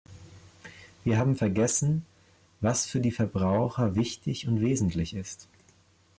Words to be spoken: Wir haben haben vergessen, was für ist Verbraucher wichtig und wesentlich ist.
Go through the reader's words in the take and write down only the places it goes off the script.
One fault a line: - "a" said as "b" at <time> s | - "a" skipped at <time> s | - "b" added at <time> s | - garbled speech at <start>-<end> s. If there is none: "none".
- "haben" skipped at 1.3 s
- "ist" said as "die" at 3.0 s